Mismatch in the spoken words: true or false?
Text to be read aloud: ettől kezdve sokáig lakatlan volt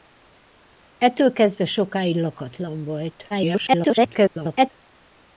true